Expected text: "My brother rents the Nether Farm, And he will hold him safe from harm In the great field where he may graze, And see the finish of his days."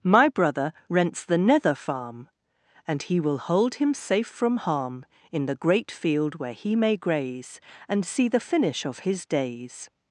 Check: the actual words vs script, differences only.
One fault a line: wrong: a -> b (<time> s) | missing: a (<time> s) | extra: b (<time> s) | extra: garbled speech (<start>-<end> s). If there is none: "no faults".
no faults